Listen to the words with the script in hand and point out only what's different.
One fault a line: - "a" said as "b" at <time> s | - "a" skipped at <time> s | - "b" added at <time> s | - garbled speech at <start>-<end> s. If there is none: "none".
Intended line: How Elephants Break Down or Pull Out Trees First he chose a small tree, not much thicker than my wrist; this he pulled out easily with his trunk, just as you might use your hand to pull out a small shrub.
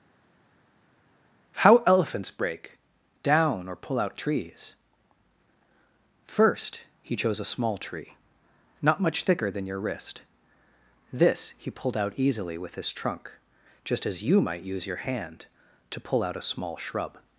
- "my" said as "your" at 9.6 s